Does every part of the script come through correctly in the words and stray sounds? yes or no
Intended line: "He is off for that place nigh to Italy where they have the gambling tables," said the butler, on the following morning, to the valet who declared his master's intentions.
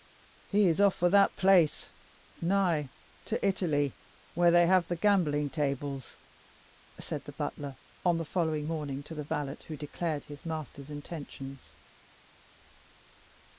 yes